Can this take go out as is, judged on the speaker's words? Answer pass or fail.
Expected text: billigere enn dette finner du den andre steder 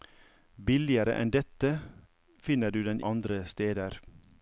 pass